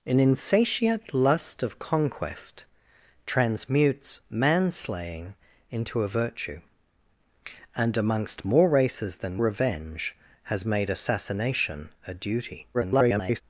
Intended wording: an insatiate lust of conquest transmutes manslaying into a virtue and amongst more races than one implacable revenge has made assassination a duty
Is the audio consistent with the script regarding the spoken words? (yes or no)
no